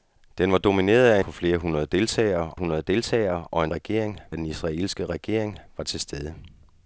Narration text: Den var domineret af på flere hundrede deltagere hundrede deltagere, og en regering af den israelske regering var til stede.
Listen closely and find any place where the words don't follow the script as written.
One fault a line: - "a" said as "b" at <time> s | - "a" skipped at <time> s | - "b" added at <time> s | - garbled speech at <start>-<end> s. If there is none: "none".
none